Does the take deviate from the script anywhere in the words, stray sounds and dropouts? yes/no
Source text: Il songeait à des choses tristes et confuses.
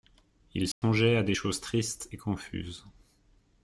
yes